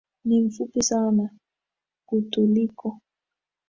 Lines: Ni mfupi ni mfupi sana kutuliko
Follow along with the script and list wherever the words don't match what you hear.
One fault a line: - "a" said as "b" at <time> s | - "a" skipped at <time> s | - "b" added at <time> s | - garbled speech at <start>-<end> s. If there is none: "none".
- "ni mfupi" skipped at 0.8 s